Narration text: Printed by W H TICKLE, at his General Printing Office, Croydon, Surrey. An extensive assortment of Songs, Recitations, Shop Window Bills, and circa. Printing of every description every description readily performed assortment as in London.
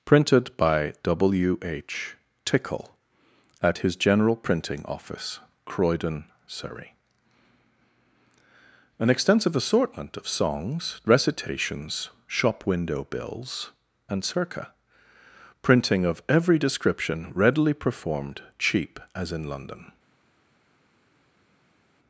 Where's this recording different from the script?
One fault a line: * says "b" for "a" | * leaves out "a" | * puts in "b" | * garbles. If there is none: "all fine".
* leaves out "every description"
* says "cheap" for "assortment"